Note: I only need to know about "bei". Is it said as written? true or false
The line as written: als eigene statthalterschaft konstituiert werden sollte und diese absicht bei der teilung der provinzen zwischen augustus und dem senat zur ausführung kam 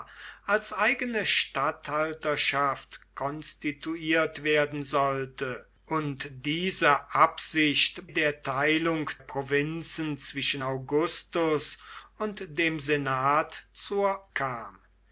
false